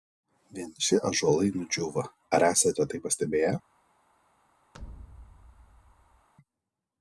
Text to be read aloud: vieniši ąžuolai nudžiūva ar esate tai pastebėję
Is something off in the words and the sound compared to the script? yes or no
yes